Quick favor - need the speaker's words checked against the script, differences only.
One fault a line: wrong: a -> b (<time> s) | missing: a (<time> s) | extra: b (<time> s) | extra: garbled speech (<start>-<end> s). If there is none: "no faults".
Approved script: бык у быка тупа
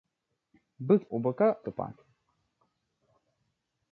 no faults